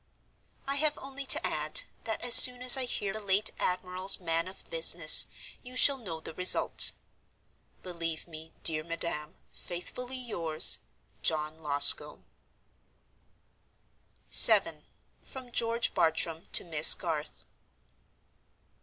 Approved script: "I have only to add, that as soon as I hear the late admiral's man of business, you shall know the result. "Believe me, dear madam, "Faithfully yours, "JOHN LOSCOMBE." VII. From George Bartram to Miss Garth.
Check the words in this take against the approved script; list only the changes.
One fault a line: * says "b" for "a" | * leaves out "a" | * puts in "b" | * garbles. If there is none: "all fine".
all fine